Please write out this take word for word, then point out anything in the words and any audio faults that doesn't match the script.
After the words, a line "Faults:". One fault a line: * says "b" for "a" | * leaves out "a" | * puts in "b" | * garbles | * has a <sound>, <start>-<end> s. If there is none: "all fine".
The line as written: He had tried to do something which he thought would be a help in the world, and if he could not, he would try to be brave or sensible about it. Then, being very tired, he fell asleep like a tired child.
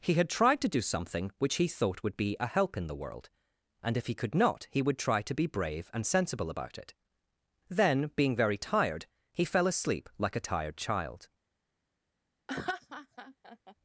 He had tried to do something which he thought would be a help in the world, and if he could not, he would try to be brave and sensible about it. Then, being very tired, he fell asleep like a tired child.
Faults:
* says "and" for "or"
* has a laugh, 12.5-13.8 s